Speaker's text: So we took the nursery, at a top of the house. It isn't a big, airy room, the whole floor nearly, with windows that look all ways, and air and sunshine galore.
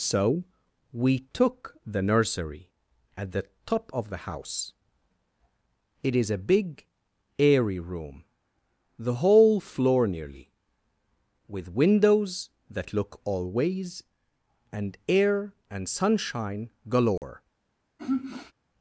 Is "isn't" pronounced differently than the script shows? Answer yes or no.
yes